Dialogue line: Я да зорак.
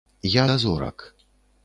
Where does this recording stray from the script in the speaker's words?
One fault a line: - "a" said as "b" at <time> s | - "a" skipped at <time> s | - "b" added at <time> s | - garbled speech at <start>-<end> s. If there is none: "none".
none